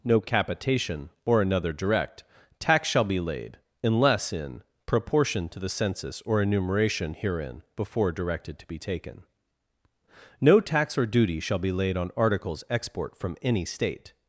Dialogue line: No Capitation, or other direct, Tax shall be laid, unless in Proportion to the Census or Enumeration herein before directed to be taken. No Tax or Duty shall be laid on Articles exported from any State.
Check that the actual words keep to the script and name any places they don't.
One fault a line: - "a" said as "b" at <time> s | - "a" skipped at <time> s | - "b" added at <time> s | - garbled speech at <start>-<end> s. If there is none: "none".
- "other" said as "another" at 1.4 s
- "exported" said as "export" at 12.7 s